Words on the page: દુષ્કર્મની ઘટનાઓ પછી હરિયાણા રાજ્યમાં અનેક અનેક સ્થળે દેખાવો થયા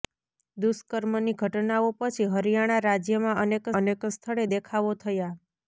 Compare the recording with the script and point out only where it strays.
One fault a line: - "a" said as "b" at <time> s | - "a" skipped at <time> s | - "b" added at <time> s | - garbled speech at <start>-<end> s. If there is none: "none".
none